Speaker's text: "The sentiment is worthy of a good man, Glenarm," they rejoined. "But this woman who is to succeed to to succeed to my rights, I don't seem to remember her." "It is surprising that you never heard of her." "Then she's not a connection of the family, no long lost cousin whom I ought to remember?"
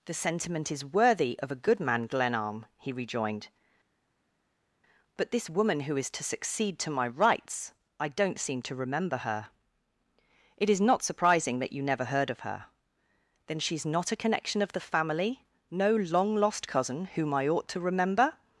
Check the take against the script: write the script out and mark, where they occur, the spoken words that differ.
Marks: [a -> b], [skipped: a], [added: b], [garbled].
"The sentiment is worthy of a good man, Glenarm," [they -> he] rejoined. "But this woman who is to succeed to [skipped: to succeed to] my rights, I don't seem to remember her." "It is [added: not] surprising that you never heard of her." "Then she's not a connection of the family, no long lost cousin whom I ought to remember?"